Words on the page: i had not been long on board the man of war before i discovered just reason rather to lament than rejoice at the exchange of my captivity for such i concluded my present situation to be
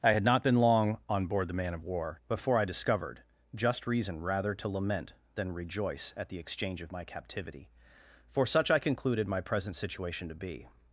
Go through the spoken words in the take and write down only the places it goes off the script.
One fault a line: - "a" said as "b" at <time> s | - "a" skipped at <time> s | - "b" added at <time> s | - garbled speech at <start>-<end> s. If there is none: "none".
none